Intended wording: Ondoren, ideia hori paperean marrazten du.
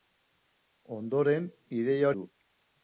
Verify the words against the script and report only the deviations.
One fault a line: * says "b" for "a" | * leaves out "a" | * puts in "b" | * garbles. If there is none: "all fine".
* leaves out "hori paperean marrazten"